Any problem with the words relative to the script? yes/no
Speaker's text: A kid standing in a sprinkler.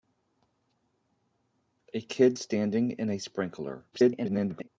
yes